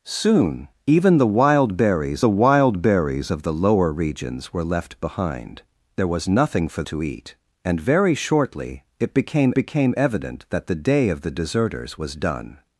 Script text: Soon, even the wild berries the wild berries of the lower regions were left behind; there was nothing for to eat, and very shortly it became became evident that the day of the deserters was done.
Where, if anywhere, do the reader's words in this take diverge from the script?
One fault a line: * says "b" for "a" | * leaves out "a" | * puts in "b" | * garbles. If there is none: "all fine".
all fine